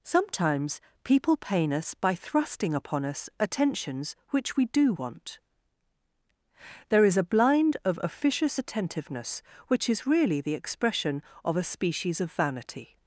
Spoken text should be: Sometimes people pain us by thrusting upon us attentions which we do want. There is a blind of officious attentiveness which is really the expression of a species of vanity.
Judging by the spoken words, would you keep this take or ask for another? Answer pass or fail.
pass